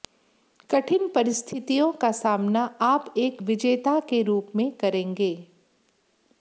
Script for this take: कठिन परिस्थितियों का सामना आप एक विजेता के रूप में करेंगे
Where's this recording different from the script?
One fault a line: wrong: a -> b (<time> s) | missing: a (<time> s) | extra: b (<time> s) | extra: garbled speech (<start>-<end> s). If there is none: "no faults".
no faults